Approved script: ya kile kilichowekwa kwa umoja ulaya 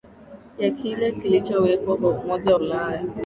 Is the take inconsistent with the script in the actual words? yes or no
no